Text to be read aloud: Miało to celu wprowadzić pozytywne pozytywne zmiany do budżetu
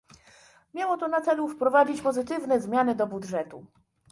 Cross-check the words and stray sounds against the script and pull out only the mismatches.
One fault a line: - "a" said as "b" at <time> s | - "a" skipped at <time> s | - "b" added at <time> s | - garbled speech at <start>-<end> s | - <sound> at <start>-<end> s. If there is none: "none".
- "na" added at 1.1 s
- "pozytywne" skipped at 2.6 s